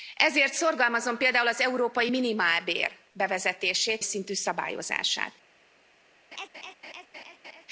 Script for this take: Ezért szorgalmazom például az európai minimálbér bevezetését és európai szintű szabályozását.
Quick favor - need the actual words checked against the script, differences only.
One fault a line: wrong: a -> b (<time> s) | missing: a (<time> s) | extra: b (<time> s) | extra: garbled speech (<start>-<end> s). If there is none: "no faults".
missing: és európai (4.0 s)